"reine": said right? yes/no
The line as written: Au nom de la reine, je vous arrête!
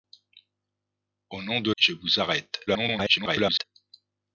no